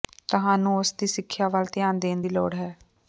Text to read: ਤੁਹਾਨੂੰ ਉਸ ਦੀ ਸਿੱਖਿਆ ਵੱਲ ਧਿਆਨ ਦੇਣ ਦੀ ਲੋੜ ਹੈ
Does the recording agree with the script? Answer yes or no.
yes